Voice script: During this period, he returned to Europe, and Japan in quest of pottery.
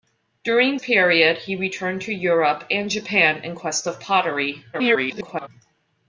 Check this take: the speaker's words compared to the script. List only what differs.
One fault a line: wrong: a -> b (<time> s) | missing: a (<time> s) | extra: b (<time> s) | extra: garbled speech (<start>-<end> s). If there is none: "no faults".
missing: this (0.8 s)
extra: garbled speech (4.7-5.5 s)